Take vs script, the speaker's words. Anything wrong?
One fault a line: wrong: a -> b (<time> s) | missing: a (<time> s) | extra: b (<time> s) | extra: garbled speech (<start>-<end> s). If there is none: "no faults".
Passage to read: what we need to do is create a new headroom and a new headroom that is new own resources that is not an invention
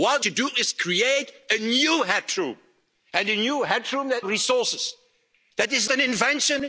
missing: we need (0.2 s)
missing: is new own (4.3 s)
missing: not (5.9 s)